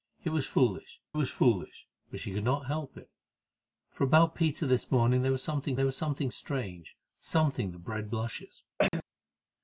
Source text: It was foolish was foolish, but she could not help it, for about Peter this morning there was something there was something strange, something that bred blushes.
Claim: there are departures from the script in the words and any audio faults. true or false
true